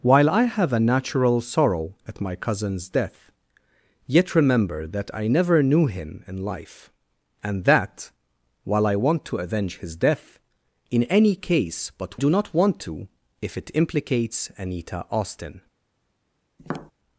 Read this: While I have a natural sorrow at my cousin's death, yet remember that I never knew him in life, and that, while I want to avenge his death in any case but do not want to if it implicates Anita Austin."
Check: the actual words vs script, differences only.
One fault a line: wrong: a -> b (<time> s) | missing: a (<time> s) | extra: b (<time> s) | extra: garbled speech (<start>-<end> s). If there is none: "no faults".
no faults